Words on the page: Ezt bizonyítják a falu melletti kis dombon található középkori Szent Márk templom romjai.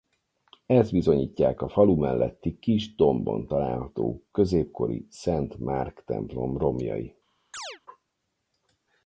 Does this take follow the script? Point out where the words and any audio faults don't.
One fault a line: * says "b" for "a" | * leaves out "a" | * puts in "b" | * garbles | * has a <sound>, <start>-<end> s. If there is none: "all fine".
* has a chirp, 7.5-7.8 s